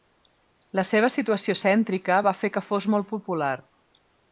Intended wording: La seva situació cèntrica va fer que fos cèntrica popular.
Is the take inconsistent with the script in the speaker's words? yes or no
yes